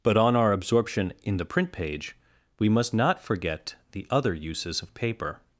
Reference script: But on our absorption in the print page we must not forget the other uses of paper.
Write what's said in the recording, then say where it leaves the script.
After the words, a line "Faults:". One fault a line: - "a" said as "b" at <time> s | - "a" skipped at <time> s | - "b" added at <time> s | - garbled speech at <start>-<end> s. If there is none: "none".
But on our absorption in the print page we must not forget the other uses of paper.
Faults:
none